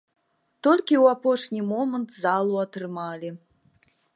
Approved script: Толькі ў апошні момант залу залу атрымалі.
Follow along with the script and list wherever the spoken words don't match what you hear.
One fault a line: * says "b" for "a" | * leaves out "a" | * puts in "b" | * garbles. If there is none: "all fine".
* leaves out "залу"